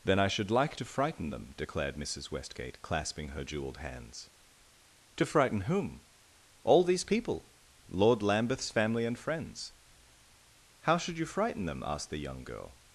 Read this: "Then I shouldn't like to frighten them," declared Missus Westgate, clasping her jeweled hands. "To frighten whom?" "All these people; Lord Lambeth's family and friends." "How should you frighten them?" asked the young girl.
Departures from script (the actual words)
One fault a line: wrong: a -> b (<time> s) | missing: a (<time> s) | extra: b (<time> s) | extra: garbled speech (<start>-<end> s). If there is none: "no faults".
wrong: shouldn't -> should (0.3 s)